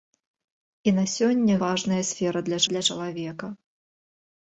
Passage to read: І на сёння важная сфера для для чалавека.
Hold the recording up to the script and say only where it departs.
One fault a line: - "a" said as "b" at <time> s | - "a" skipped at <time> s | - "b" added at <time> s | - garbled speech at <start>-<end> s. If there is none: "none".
none